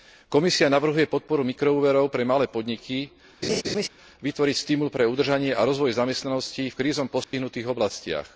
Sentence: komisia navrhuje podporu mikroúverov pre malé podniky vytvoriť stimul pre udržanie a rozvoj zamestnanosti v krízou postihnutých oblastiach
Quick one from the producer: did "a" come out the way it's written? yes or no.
yes